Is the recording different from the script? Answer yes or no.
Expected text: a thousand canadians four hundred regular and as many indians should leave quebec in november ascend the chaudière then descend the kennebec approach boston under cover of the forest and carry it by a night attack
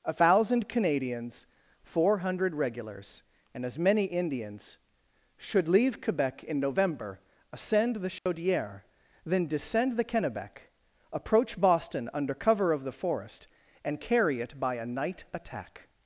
yes